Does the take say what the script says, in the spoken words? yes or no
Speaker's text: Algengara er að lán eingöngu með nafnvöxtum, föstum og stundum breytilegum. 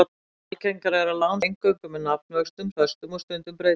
yes